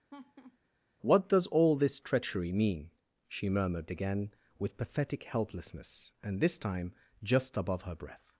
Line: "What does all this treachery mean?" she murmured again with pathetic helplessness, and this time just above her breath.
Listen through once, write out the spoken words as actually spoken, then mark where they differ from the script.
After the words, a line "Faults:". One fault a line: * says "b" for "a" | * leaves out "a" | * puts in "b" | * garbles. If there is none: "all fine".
"What does all this treachery mean?" she murmured again with pathetic helplessness, and this time just above her breath.
Faults:
all fine